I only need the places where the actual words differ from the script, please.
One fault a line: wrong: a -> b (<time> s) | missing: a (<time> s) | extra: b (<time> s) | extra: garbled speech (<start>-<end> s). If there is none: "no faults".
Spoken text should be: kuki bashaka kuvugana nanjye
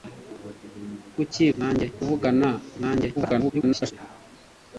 wrong: bashaka -> nanjye (1.6 s)
extra: garbled speech (3.1-3.9 s)